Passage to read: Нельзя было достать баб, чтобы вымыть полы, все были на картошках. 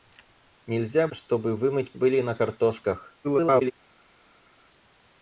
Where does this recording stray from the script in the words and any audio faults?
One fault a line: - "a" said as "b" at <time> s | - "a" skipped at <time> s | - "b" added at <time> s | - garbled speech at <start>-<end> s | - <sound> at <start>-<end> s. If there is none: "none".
- "было достать баб" skipped at 1.1 s
- "полы все" skipped at 1.9 s
- garbled speech at 3.2-3.7 s